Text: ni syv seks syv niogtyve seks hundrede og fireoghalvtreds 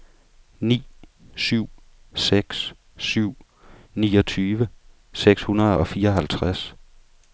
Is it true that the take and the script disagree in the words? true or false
false